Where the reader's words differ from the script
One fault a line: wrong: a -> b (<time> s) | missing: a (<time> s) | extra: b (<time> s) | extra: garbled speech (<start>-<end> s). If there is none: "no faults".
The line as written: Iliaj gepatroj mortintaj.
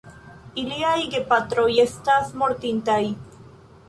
extra: estas (1.8 s)